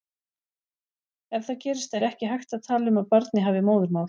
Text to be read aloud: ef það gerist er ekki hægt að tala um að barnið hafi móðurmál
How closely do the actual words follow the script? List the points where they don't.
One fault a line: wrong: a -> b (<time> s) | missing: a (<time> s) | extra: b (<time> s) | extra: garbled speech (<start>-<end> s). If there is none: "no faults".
no faults